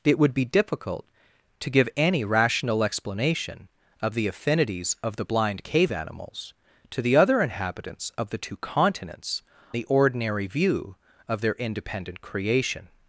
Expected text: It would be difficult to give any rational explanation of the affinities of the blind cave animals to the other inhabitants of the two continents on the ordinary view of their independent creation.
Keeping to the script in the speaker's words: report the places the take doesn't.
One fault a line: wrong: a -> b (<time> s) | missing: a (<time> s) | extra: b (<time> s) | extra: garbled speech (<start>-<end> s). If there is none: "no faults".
missing: on (9.4 s)